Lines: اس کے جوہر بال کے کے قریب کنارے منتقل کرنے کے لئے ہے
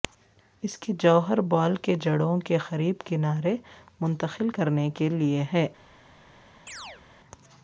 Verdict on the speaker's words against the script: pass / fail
fail